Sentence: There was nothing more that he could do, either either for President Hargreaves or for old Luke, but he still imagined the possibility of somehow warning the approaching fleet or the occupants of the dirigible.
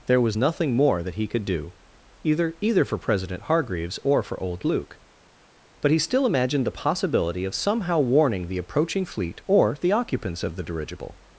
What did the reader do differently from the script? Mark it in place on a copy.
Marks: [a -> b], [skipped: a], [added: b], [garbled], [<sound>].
There was nothing more that he could do, either either for President Hargreaves or for old Luke, but he still imagined the possibility of somehow warning the approaching fleet or the occupants of the dirigible.